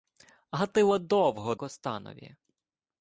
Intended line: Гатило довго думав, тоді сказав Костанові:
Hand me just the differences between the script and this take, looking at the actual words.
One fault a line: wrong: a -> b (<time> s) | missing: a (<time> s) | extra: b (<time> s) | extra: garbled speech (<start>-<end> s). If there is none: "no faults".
missing: думав тоді сказав (1.6 s)